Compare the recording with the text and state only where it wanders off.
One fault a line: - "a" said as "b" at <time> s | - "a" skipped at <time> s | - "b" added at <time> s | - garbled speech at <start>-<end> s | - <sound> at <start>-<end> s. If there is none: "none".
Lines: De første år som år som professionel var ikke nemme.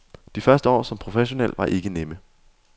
- "år som" skipped at 1.0 s